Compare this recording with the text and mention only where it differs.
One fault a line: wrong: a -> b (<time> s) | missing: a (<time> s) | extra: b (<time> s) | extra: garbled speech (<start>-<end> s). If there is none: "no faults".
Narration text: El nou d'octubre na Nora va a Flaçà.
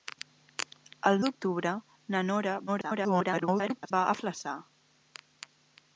missing: nou (1.2 s)
extra: garbled speech (2.7-3.9 s)